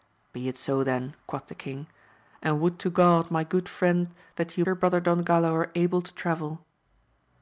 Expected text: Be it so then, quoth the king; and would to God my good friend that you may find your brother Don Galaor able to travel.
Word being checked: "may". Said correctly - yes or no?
no